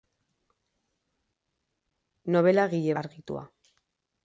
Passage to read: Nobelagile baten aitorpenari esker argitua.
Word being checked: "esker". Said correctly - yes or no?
no